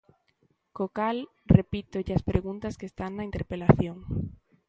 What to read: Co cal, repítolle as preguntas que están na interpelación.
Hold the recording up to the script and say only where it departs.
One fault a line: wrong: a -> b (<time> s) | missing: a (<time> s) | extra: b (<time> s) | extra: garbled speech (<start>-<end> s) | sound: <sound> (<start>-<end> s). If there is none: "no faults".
no faults